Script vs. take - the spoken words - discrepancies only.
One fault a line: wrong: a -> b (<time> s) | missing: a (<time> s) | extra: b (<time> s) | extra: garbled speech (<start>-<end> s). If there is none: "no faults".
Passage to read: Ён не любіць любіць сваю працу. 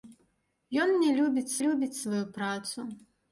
no faults